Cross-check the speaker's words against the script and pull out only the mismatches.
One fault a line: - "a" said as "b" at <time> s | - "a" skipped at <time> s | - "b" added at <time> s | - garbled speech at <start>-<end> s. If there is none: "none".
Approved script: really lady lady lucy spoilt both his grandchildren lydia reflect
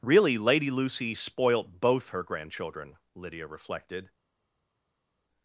- "lady" skipped at 0.7 s
- "his" said as "her" at 2.1 s
- "reflect" said as "reflected" at 3.5 s